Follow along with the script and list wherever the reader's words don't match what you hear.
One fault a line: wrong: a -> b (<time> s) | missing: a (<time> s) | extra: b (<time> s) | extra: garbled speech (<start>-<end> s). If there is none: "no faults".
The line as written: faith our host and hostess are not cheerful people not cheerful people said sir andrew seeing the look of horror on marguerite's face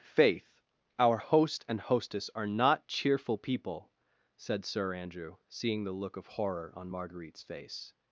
missing: not cheerful people (3.9 s)